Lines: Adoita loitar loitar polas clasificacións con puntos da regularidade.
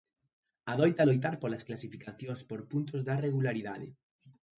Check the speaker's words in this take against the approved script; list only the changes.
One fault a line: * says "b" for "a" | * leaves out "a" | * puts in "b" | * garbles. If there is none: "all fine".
* leaves out "loitar"
* says "por" for "con"